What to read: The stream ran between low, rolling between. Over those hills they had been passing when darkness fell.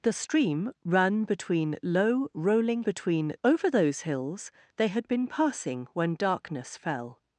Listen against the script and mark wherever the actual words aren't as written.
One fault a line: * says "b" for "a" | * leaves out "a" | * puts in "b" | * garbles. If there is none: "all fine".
all fine